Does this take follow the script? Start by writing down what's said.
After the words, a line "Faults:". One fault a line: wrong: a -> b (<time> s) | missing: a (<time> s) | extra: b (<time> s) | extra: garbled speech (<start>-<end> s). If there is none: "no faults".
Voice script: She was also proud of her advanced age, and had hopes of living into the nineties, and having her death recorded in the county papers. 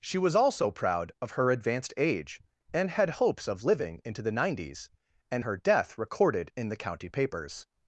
She was also proud of her advanced age, and had hopes of living into the nineties, and her death recorded in the county papers.
Faults:
missing: having (5.5 s)